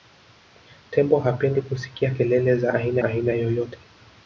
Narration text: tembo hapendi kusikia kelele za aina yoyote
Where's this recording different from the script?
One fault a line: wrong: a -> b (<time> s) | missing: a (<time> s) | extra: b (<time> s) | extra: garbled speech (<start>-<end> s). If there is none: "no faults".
extra: aina (3.0 s)